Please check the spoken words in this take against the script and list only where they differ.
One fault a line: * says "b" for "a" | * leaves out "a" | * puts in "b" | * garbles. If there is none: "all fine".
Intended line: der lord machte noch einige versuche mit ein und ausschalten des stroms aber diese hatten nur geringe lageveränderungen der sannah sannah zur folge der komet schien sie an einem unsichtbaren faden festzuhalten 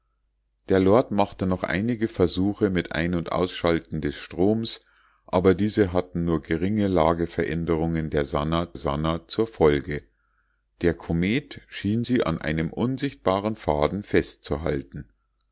all fine